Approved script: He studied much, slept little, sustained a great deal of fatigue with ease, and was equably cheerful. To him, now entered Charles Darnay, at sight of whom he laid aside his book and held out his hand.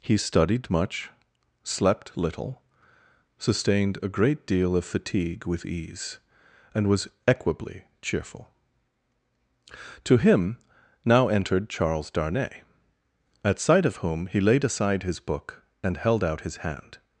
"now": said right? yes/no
yes